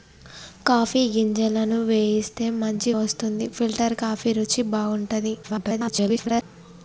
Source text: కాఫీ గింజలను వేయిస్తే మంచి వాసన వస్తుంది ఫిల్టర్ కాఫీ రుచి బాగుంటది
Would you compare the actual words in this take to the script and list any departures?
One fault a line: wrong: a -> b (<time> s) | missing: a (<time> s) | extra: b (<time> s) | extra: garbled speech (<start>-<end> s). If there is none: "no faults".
missing: వాసన (2.9 s)
extra: garbled speech (5.4-6.4 s)